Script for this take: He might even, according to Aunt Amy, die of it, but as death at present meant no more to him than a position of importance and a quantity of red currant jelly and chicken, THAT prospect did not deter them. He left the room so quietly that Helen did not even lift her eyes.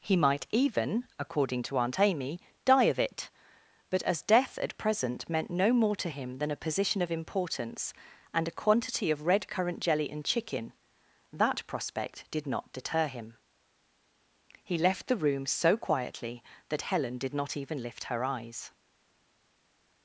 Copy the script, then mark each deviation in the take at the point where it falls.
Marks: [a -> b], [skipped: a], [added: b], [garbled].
He might even, according to Aunt Amy, die of it, but as death at present meant no more to him than a position of importance and a quantity of red currant jelly and chicken, THAT prospect did not deter [them. -> him] He left the room so quietly that Helen did not even lift her eyes.